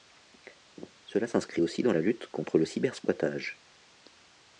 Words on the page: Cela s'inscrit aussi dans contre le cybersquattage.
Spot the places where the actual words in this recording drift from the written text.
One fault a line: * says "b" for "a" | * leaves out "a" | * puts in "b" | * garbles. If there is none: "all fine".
* puts in "la lutte"